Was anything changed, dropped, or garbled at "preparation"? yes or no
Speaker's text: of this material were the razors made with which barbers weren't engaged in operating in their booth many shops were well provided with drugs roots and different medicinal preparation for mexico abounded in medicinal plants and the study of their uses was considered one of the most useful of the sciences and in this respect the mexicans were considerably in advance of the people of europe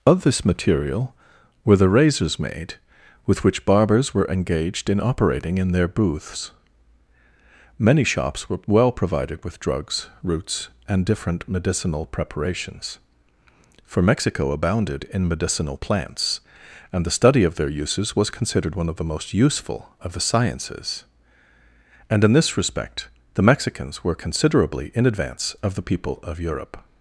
yes